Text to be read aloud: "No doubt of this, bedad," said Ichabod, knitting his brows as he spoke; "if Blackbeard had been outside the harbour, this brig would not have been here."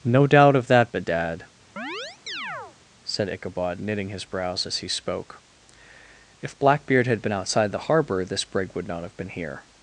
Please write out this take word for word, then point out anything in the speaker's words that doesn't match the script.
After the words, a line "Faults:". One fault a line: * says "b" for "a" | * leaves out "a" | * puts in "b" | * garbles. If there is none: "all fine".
"No doubt of that, bedad," said Ichabod, knitting his brows as he spoke; "if Blackbeard had been outside the harbour, this brig would not have been here."
Faults:
* says "that" for "this"